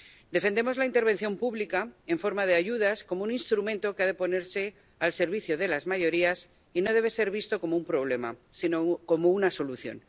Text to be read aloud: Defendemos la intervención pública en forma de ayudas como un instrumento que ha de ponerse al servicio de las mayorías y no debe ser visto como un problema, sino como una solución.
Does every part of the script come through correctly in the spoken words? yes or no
yes